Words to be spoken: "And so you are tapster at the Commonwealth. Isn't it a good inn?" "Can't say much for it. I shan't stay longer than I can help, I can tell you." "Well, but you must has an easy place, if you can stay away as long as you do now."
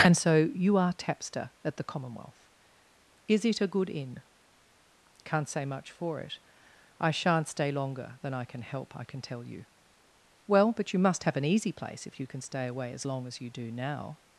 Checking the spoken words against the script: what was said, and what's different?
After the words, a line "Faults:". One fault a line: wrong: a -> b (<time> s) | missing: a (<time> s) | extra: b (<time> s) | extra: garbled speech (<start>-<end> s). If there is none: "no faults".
"And so you are tapster at the Commonwealth. Is it a good inn?" "Can't say much for it. I shan't stay longer than I can help, I can tell you." "Well, but you must have an easy place, if you can stay away as long as you do now."
Faults:
wrong: Isn't -> Is (3.3 s)
wrong: has -> have (11.2 s)